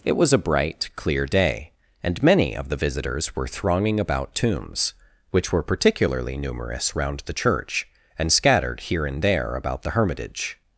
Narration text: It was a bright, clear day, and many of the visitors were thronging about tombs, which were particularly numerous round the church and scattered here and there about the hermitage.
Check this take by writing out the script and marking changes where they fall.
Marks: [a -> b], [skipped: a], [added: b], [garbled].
It was a bright, clear day, and many of the visitors were thronging about tombs, which were particularly numerous round the church and scattered here and there about the hermitage.